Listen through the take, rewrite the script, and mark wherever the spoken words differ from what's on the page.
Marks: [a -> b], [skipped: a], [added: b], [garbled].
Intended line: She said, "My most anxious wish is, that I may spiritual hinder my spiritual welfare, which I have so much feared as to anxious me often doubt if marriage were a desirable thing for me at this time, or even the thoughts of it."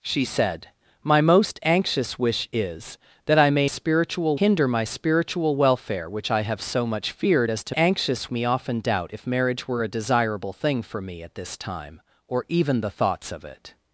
She said, "My most anxious wish is, that I may spiritual hinder my spiritual welfare, which I have so much feared as to anxious me often doubt if marriage were a desirable thing for me at this time, or even the thoughts of it."